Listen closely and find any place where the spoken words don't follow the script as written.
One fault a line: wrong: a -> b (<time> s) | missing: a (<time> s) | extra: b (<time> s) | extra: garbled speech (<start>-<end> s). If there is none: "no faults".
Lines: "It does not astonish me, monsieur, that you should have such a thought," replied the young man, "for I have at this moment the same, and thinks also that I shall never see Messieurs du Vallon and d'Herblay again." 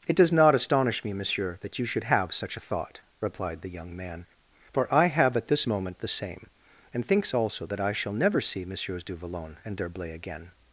no faults